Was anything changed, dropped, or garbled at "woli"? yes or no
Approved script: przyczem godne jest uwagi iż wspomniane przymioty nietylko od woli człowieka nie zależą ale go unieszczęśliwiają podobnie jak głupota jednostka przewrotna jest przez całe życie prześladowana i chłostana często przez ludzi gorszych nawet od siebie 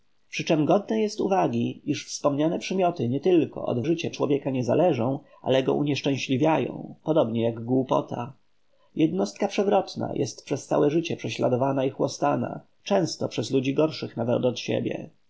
yes